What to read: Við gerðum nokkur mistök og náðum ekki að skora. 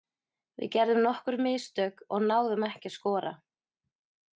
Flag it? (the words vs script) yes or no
no